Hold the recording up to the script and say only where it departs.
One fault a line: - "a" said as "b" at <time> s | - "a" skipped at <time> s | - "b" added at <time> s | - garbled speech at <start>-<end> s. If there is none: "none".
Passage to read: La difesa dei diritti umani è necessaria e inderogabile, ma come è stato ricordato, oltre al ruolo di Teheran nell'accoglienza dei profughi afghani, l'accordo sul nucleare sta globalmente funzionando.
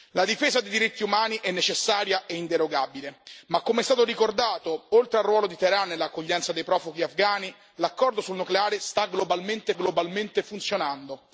- "globalmente" added at 9.7 s